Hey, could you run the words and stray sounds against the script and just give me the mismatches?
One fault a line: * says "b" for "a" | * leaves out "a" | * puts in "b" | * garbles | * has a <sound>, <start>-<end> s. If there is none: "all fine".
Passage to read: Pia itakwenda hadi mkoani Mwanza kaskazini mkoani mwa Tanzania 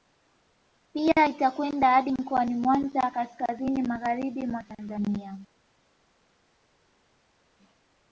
* says "magharibi" for "mkoani"